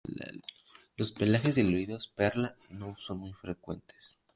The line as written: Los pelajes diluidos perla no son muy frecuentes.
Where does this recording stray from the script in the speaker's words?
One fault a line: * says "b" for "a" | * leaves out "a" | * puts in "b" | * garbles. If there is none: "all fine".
all fine